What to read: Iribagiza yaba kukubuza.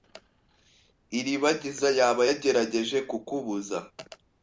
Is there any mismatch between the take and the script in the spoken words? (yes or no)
yes